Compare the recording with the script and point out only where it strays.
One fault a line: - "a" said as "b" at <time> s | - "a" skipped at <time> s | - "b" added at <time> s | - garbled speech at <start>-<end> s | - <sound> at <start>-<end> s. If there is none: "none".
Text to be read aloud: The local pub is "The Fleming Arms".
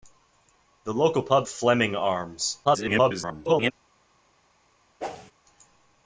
- "is The" skipped at 1.5 s
- garbled speech at 2.6-3.7 s
- whoosh at 5.0-5.3 s